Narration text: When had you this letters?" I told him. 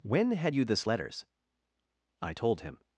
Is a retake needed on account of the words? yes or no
no